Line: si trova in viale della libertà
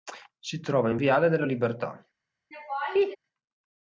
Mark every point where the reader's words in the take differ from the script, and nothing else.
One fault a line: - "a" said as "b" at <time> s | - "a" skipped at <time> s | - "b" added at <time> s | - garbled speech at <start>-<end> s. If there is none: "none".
none